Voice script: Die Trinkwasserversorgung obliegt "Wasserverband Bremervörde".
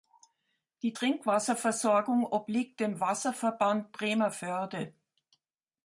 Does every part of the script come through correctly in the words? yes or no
no